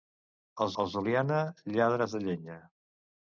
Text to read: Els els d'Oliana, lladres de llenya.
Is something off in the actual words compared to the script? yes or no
no